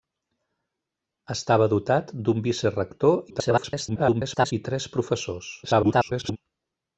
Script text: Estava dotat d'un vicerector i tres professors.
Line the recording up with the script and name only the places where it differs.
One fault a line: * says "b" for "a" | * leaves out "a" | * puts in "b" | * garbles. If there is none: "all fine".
* garbles
* garbles